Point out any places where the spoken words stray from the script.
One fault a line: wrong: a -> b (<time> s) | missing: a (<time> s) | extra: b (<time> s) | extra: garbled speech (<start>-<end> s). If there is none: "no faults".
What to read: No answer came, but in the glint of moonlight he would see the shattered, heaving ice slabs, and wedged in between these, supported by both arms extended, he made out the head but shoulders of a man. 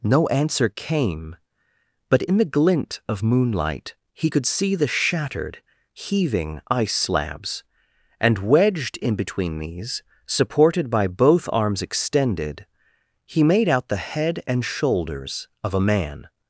wrong: would -> could (4.3 s)
wrong: but -> and (14.5 s)